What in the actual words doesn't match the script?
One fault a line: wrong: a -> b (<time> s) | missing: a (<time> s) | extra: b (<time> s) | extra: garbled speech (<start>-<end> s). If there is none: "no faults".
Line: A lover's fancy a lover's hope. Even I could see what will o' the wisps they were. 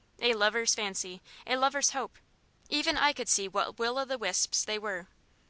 no faults